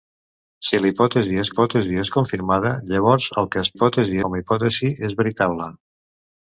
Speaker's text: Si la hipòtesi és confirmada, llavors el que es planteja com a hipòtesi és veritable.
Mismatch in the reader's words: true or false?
true